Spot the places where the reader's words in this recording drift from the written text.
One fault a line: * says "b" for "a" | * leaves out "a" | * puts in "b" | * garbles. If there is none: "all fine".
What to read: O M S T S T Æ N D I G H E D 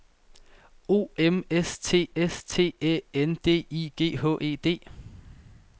all fine